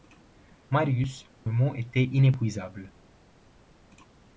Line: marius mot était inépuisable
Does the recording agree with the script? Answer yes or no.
yes